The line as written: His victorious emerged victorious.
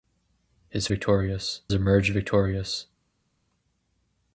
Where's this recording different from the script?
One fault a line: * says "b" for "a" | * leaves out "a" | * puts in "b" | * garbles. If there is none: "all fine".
all fine